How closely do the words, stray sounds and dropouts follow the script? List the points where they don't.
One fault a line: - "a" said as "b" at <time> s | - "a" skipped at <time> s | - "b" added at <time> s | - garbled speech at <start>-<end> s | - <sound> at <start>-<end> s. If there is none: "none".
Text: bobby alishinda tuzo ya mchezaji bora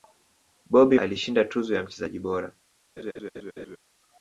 - laugh at 3.0-3.8 s